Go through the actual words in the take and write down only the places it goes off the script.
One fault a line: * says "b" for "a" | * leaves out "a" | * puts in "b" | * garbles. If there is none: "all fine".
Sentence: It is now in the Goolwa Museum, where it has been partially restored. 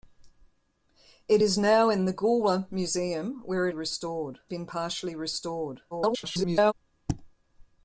* says "restored" for "has"
* garbles